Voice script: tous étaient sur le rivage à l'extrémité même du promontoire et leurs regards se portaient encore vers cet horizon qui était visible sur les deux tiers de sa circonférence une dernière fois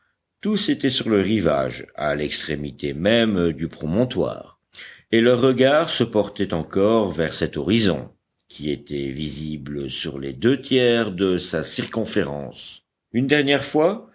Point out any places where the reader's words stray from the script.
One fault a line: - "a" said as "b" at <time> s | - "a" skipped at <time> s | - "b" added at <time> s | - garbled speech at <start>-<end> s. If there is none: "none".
none